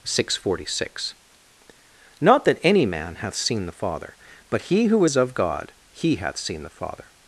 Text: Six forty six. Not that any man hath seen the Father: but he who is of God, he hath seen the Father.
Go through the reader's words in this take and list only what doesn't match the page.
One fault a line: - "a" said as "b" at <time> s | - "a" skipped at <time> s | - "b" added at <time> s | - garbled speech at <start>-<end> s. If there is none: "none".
none